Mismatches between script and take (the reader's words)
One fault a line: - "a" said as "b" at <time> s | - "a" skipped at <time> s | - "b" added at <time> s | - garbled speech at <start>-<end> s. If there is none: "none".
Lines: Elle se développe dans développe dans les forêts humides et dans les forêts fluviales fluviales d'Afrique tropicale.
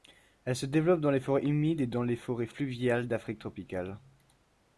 - "développe dans" skipped at 1.1 s
- "fluviales" skipped at 3.1 s